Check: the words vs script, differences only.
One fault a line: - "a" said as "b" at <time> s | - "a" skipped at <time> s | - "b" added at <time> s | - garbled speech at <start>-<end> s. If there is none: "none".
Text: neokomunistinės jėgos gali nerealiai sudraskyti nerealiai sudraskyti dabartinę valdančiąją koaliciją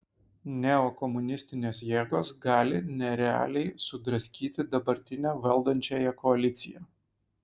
- "nerealiai sudraskyti" skipped at 4.7 s